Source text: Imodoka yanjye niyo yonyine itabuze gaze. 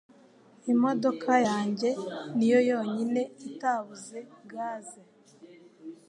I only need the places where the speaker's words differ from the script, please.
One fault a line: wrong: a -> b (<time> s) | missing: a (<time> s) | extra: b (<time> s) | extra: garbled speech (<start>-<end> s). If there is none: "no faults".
no faults